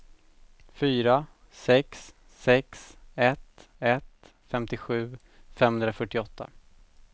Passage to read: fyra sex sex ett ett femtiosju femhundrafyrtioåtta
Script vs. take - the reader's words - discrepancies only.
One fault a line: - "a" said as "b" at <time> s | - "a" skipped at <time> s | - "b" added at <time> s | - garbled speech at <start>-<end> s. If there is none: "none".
none